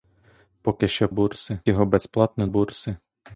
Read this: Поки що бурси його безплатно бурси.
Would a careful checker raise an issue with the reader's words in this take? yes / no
no